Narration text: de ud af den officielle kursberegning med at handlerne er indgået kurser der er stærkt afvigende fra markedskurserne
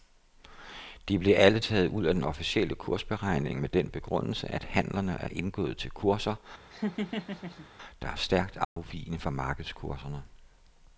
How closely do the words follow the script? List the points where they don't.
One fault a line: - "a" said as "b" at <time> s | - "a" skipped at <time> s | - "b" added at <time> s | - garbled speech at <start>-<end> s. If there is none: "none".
- "blev alle taget" added at 1.2 s
- "den begrundelse" added at 3.7 s
- "til" added at 5.8 s